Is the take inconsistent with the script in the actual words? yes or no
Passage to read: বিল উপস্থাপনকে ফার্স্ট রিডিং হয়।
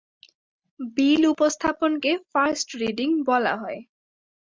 yes